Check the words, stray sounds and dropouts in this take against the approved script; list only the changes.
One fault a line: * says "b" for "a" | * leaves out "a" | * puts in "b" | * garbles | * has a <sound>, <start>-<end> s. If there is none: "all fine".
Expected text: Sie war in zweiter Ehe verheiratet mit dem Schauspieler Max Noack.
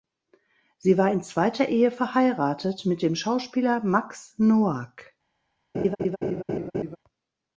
* has a laugh, 5.7-7.0 s